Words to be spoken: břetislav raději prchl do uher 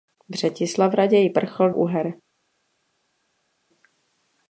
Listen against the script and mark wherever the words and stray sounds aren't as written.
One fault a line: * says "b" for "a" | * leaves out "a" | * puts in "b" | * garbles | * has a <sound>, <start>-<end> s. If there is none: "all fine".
* leaves out "do"